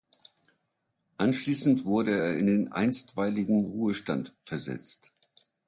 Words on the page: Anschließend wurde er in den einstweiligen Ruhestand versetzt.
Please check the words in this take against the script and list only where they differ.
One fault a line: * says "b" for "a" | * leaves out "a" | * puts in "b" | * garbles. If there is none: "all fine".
all fine